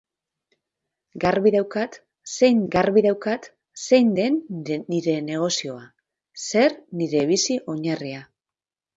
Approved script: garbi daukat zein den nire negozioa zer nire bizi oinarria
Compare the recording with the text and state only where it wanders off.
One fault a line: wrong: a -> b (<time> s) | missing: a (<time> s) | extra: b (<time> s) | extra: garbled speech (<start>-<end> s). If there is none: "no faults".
extra: garbi daukat zein (2.7 s)